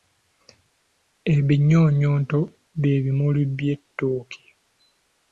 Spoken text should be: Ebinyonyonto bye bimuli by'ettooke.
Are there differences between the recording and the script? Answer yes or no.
no